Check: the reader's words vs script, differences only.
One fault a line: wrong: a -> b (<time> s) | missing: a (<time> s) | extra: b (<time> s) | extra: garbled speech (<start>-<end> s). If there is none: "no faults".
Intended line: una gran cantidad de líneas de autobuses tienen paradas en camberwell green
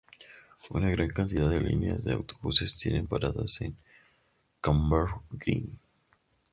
no faults